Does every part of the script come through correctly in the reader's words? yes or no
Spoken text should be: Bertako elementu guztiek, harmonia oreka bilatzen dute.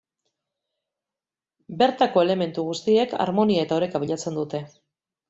no